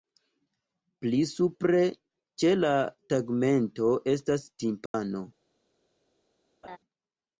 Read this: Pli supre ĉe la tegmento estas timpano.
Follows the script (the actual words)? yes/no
yes